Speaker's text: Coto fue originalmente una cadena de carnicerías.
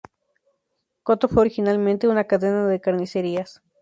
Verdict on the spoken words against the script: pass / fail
pass